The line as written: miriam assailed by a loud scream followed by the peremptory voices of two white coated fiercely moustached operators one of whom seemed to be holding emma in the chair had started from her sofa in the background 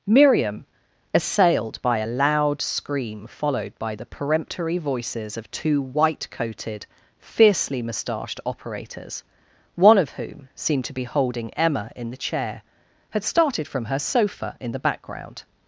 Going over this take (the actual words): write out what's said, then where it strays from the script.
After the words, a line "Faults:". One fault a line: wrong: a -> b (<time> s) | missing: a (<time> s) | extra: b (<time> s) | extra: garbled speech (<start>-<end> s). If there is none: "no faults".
miriam assailed by a loud scream followed by the peremptory voices of two white coated fiercely moustached operators one of whom seemed to be holding emma in the chair had started from her sofa in the background
Faults:
no faults